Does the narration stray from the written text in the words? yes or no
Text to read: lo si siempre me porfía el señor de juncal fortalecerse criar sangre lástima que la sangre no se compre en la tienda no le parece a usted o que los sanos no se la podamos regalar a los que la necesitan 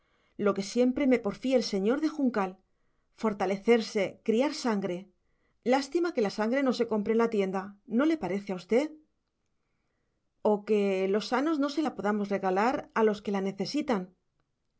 yes